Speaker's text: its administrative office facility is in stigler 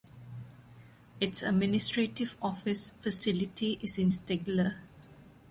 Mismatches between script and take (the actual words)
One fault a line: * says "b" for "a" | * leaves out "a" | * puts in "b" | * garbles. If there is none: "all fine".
all fine